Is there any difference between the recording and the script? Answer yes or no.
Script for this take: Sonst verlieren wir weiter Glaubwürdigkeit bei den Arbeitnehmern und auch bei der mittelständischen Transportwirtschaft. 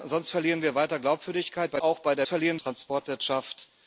yes